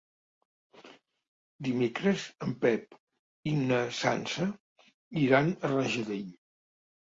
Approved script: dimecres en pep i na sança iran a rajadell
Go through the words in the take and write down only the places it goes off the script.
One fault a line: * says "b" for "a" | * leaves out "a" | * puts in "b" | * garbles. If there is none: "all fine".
all fine